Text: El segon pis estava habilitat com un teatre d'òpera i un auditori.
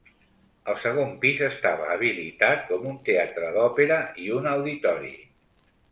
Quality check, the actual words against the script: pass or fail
pass